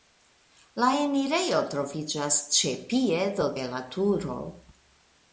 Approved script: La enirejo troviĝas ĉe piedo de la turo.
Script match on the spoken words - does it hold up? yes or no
yes